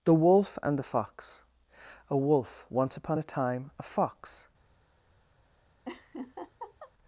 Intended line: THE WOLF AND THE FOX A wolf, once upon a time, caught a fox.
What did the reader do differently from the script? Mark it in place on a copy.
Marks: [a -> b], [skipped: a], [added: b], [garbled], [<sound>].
THE WOLF AND THE FOX A wolf, once upon a time, [skipped: caught] a fox. [laugh]